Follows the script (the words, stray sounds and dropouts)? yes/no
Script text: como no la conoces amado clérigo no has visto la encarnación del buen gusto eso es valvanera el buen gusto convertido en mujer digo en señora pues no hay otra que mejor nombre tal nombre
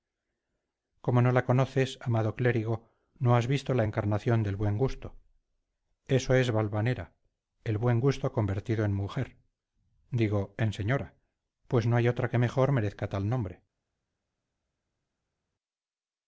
no